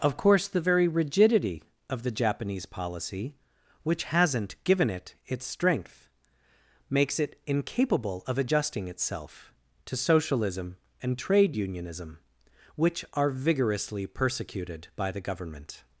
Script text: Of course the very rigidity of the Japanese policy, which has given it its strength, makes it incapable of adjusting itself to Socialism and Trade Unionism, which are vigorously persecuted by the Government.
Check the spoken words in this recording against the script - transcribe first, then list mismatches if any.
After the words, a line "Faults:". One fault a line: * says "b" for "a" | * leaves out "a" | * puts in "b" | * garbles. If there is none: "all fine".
Of course the very rigidity of the Japanese policy, which hasn't given it its strength, makes it incapable of adjusting itself to Socialism and Trade Unionism, which are vigorously persecuted by the Government.
Faults:
* says "hasn't" for "has"